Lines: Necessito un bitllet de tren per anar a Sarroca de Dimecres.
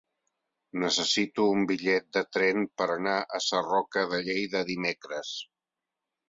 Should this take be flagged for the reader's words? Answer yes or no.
yes